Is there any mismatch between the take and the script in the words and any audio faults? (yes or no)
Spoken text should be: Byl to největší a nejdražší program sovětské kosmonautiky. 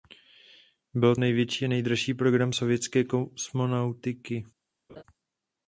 yes